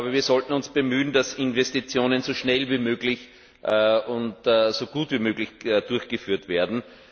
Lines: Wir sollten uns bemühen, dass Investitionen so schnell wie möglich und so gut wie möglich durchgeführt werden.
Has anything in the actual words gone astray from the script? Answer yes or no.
no